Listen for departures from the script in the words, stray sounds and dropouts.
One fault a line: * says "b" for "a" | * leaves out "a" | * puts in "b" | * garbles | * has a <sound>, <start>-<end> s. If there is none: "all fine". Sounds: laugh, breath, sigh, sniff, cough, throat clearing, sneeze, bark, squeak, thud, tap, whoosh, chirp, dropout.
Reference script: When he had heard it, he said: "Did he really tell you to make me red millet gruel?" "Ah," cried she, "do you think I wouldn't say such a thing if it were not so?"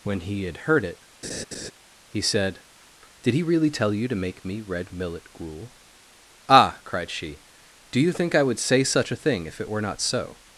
* has a laugh, 1.2-1.7 s
* says "would" for "wouldn't"